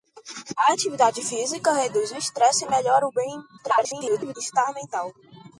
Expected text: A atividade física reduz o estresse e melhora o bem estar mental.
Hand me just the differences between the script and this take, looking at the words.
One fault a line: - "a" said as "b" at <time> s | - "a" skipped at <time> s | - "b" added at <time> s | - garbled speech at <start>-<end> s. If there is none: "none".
- garbled speech at 3.6-4.4 s